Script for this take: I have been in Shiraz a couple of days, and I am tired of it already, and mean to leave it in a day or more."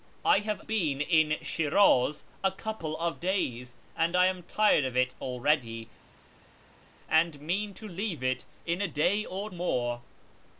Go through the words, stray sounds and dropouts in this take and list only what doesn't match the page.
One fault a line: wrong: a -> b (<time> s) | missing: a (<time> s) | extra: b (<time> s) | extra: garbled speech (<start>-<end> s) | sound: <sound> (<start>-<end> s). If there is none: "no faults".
no faults